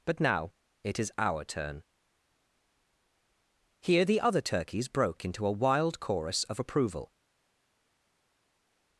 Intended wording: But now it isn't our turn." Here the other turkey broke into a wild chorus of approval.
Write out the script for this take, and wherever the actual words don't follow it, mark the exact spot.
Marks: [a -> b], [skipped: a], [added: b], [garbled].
But now it [isn't -> is] our turn." Here the other [turkey -> turkeys] broke into a wild chorus of approval.